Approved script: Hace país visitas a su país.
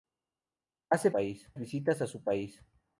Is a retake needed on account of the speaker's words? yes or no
no